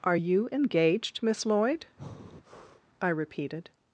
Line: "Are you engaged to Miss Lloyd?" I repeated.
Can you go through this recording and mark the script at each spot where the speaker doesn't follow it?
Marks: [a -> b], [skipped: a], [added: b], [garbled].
"Are you engaged [skipped: to] Miss Lloyd?" I repeated.